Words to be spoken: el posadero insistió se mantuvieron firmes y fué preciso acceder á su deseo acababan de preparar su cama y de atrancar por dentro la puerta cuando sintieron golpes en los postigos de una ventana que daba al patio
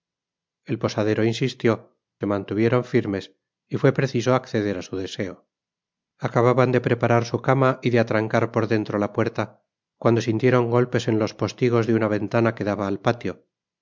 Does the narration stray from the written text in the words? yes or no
no